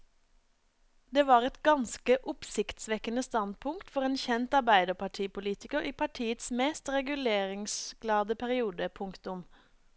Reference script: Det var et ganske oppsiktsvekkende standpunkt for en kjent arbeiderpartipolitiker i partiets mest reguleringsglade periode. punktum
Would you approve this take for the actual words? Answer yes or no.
yes